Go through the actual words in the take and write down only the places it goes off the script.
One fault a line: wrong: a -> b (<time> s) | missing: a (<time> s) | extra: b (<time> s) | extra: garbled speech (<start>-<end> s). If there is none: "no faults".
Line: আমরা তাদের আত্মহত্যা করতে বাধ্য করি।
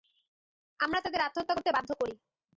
no faults